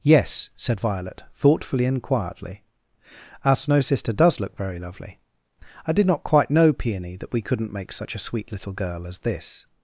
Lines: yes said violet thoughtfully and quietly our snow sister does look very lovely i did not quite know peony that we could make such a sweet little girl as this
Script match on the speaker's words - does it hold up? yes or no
no